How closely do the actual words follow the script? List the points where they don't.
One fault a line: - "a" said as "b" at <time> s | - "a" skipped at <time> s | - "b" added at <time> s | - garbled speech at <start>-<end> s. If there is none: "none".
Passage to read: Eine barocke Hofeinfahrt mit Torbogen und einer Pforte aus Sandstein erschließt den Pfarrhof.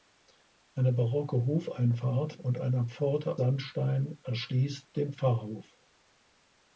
- "mit Torbogen" skipped at 2.4 s
- "aus" skipped at 3.4 s